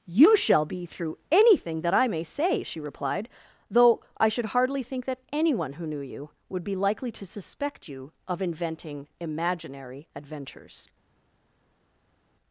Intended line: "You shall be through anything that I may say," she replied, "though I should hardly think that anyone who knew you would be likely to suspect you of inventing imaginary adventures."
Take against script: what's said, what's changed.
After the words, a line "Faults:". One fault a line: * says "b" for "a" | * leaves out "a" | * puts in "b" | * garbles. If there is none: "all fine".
"You shall be through anything that I may say," she replied, "though I should hardly think that anyone who knew you would be likely to suspect you of inventing imaginary adventures."
Faults:
all fine